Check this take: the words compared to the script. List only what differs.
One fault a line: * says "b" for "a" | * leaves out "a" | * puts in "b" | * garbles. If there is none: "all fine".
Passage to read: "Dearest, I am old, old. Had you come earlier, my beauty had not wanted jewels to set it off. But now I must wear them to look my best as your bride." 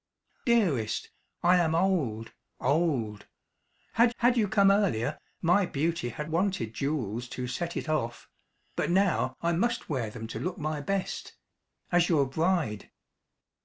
* puts in "had"
* leaves out "not"